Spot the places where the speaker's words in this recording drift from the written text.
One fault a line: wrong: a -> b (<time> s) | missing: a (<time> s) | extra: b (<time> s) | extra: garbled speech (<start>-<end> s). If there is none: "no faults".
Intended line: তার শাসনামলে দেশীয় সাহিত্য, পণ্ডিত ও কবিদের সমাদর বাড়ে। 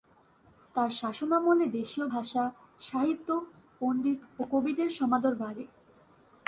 extra: ভাষা (2.0 s)